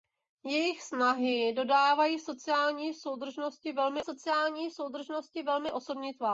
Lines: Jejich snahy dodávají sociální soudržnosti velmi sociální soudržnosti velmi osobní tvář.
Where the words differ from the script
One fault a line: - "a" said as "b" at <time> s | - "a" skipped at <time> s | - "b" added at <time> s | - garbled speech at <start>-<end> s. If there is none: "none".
none